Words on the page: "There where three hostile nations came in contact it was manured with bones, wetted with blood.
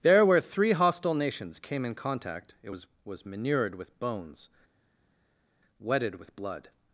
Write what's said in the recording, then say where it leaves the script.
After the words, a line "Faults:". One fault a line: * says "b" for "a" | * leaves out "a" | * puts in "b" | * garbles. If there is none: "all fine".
"There where three hostile nations came in contact it was was manured with bones, wetted with blood.
Faults:
* puts in "was"